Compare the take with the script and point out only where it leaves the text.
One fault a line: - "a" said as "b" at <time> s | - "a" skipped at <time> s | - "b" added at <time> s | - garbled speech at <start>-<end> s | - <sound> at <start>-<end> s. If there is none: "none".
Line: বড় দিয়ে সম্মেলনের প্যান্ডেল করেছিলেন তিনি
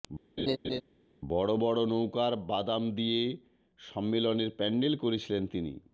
- laugh at 0.4-0.8 s
- "বড় নৌকার বাদাম" added at 1.6 s